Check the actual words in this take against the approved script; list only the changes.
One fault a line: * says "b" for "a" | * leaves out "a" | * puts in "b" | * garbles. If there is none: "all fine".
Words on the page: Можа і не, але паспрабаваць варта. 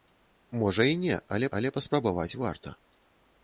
* puts in "але"